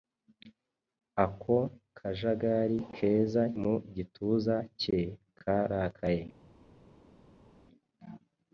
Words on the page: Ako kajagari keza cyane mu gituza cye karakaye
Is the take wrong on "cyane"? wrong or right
wrong